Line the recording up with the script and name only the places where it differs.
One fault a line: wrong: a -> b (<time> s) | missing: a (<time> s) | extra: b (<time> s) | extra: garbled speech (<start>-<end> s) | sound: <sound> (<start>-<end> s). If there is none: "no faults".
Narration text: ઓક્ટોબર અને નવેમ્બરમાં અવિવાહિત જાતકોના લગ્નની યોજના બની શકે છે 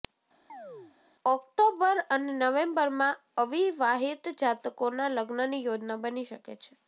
sound: chirp (0.5-1.0 s)